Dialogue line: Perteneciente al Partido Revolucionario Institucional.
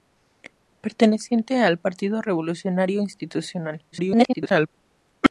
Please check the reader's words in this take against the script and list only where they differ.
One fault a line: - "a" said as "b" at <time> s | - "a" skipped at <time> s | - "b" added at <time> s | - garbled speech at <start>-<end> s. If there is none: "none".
- garbled speech at 3.9-4.7 s